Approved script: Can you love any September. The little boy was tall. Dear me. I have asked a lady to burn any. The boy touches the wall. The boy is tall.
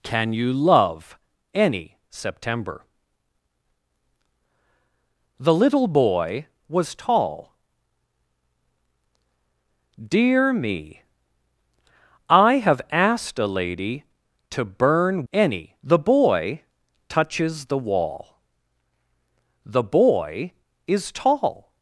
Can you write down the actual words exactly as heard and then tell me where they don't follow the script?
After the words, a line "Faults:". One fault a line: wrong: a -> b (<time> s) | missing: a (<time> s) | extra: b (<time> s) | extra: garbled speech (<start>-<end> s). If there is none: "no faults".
Can you love any September. The little boy was tall. Dear me. I have asked a lady to burn any. The boy touches the wall. The boy is tall.
Faults:
no faults